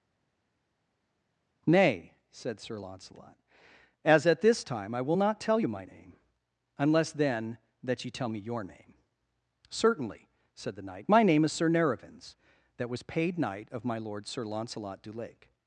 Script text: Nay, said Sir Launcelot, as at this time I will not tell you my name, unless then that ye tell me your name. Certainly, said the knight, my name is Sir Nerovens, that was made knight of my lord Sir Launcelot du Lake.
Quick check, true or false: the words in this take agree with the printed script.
false